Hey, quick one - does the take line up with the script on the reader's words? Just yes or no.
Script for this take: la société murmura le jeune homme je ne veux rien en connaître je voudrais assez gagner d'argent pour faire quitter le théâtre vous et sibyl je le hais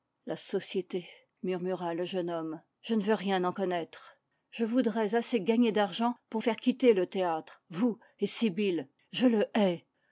yes